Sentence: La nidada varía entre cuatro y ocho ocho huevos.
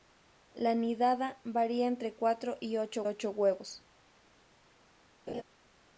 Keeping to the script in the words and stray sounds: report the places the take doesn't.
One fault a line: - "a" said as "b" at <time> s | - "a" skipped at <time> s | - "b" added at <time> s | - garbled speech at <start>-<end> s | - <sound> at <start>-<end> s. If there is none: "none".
- laugh at 5.3-5.4 s